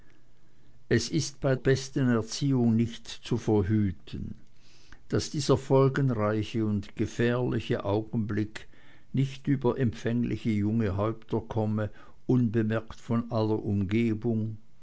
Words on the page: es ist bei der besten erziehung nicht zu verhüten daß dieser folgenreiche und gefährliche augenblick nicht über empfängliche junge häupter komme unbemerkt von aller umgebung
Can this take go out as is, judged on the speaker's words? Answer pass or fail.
fail